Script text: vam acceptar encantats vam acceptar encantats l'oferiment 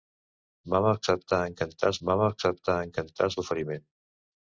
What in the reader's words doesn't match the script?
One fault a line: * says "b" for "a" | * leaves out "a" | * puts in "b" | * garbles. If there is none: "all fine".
all fine